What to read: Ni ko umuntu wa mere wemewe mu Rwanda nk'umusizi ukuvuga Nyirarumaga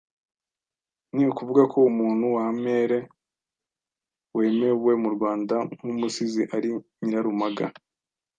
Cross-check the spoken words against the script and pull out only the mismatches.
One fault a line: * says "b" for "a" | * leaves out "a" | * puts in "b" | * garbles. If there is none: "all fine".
* puts in "ukuvuga"
* says "ari" for "ukuvuga"